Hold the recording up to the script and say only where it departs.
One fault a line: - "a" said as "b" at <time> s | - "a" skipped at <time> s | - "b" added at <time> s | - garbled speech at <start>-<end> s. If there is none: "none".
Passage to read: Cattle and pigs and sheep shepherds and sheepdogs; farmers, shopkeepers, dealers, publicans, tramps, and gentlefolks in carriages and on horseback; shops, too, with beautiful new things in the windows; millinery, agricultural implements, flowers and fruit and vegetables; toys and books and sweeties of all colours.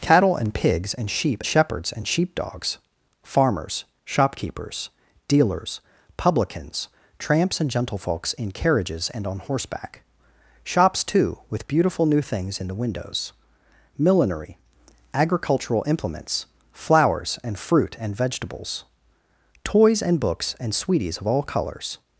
none